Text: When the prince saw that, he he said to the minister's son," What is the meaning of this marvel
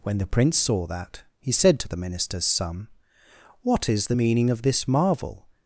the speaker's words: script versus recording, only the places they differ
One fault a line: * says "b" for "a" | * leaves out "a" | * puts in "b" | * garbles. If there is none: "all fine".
* leaves out "he"